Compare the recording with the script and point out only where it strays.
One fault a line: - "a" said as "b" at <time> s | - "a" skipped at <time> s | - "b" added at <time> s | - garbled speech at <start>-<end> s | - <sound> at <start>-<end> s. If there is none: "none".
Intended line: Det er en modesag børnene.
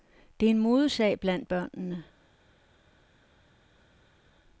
- "blandt" added at 1.2 s